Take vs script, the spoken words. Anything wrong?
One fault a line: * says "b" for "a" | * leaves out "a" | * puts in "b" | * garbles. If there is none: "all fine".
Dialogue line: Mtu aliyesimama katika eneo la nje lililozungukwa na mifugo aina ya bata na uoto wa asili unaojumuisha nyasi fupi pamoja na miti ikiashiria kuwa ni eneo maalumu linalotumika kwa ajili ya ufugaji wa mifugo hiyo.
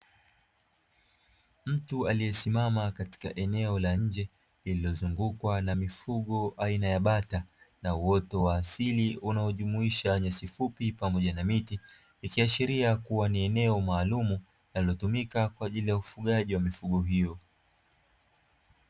all fine